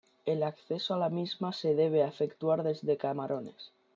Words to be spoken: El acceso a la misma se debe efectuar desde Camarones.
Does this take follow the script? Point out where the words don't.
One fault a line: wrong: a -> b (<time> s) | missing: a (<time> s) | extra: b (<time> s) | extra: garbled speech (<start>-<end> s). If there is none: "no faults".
no faults